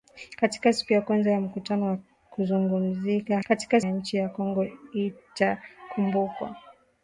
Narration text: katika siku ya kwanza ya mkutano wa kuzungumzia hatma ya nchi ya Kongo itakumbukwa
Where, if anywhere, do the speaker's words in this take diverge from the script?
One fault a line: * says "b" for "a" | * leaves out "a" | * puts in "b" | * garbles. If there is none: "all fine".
* says "katika" for "hatma"